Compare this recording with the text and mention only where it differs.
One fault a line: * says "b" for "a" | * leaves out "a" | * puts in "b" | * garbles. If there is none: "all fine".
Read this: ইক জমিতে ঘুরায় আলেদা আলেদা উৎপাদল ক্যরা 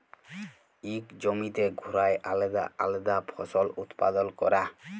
* puts in "ফসল"